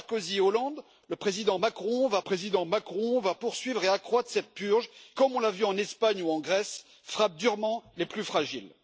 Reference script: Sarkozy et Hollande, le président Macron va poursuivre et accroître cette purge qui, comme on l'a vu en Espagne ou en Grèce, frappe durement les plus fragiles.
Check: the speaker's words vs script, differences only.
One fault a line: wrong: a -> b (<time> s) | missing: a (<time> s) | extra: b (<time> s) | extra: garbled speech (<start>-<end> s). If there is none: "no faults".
extra: président Macron va (2.2 s)
missing: qui (4.9 s)